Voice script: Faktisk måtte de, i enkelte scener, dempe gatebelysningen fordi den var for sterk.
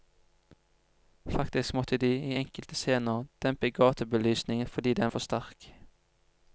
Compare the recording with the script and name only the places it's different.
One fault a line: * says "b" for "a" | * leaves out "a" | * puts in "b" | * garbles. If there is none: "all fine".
* leaves out "var"